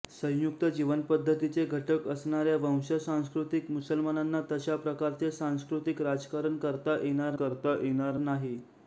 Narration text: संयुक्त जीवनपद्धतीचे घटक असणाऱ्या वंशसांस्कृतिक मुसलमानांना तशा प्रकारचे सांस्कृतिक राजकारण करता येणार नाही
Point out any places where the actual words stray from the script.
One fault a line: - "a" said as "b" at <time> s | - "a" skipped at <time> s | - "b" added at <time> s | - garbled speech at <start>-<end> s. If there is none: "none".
- "करता येणार" added at 7.3 s